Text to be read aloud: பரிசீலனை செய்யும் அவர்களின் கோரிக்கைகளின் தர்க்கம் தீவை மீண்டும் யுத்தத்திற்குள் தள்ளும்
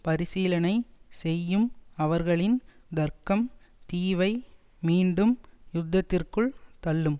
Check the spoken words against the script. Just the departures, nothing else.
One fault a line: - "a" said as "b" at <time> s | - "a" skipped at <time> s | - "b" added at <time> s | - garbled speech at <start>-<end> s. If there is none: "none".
- "கோரிக்கைகளின்" skipped at 2.6 s